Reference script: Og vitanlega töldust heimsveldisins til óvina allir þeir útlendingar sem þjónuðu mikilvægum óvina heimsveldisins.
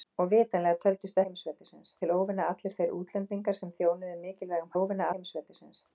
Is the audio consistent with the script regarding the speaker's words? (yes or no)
yes